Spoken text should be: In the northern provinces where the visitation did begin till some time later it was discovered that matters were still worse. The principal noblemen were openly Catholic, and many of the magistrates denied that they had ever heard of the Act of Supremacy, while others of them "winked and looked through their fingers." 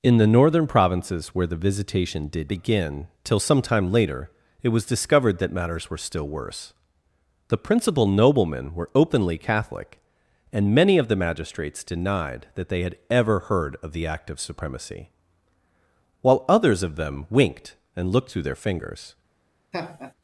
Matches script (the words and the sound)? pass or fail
fail